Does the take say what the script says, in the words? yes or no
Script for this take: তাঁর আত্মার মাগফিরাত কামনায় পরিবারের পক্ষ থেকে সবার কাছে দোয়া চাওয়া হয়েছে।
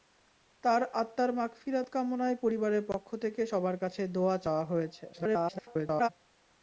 no